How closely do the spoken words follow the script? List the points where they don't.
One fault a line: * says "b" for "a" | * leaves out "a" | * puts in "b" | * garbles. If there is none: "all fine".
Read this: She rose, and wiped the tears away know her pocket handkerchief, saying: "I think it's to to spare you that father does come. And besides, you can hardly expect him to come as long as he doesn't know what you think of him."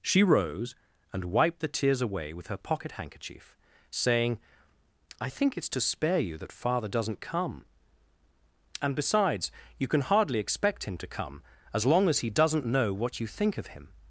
* says "with" for "know"
* leaves out "to"
* says "doesn't" for "does"